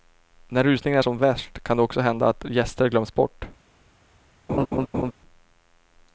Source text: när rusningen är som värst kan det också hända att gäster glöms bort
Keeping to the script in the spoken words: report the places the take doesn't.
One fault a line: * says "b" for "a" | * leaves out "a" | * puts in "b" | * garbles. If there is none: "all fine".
all fine